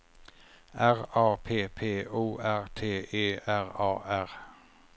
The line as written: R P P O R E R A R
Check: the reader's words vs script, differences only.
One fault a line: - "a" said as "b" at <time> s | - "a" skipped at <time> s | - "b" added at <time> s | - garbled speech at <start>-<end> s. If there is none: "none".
- "A" added at 1.1 s
- "T" added at 2.7 s